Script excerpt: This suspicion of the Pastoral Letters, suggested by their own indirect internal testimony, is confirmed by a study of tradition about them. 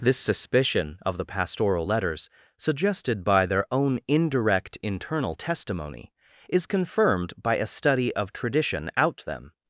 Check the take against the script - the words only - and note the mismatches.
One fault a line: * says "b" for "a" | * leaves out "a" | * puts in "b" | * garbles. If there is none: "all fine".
* says "out" for "about"